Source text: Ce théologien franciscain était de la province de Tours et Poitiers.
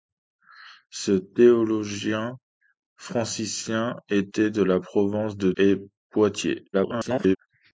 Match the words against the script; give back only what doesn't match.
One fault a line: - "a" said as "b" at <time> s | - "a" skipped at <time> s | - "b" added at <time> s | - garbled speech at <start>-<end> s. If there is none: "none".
- "Tours" skipped at 5.5 s
- garbled speech at 6.7-7.4 s